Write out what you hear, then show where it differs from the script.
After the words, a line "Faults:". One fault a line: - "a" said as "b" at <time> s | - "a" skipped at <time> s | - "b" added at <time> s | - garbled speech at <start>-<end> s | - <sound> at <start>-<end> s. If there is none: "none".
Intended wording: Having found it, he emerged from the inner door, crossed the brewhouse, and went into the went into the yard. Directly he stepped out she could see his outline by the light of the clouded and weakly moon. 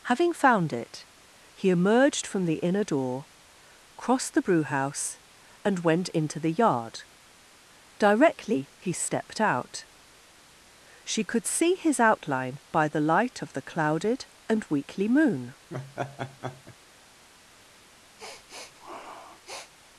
Having found it, he emerged from the inner door, crossed the brewhouse, and went into the yard. Directly he stepped out she could see his outline by the light of the clouded and weakly moon.
Faults:
- "went into the" skipped at 6.5 s
- laugh at 15.7-16.8 s
- sniff at 18.2-19.7 s